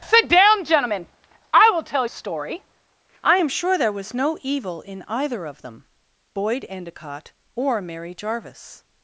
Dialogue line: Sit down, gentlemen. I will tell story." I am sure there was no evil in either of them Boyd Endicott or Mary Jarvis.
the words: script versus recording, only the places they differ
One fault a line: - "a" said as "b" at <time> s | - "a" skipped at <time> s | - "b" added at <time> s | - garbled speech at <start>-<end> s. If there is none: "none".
none